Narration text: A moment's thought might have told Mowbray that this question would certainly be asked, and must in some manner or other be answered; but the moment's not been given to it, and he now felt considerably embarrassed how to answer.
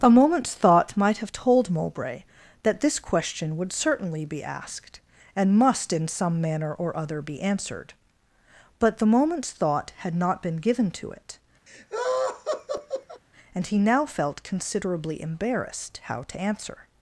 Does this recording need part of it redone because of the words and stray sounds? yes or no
yes